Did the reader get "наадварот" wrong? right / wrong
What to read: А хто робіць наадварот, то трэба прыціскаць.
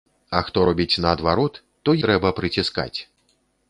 right